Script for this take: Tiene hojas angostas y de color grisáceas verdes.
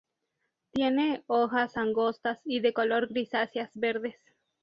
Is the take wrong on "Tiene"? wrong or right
right